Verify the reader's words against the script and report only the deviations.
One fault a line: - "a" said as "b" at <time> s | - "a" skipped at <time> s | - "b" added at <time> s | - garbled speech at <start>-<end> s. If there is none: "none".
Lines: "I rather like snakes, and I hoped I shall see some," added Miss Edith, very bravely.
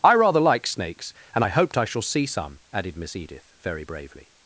none